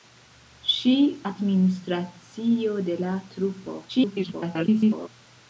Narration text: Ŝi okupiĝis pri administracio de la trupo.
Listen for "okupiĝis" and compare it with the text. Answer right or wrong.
wrong